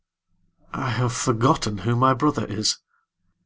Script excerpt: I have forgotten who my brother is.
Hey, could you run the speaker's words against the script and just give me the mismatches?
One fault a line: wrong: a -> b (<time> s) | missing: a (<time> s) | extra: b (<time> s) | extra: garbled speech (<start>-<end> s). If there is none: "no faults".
no faults